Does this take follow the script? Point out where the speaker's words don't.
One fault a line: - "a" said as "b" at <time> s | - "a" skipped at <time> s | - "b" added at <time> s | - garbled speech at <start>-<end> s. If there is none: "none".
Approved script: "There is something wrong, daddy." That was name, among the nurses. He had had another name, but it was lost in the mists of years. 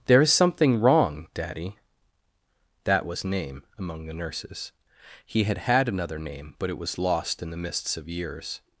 none